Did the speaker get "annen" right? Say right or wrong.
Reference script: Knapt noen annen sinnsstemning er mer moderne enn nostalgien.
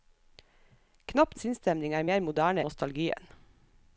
wrong